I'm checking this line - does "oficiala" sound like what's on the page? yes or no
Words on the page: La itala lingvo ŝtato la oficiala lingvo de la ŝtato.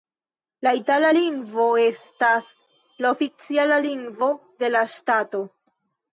yes